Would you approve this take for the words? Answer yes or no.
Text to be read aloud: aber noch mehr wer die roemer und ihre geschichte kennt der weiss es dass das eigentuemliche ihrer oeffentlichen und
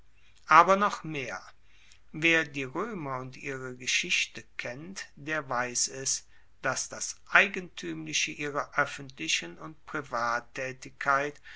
yes